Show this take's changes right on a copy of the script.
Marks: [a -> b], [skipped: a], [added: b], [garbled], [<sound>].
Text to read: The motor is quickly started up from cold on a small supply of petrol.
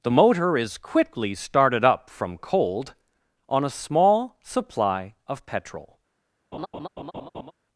The motor is quickly started up from cold on a small supply of petrol. [laugh]